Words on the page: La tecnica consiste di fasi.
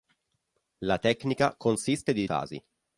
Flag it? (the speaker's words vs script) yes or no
no